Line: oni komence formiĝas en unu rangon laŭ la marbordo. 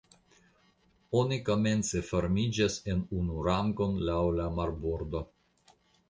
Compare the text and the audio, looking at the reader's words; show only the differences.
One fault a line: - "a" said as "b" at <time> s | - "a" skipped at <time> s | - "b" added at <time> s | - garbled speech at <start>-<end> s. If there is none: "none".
none